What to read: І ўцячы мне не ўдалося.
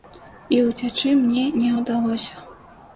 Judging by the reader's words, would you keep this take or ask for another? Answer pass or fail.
pass